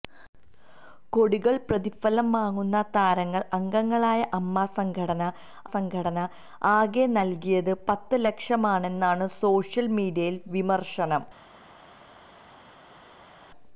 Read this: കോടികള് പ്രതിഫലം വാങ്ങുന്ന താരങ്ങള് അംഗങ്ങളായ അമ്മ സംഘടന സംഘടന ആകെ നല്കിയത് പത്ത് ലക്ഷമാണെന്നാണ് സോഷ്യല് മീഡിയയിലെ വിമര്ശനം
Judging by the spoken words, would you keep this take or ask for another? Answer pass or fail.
pass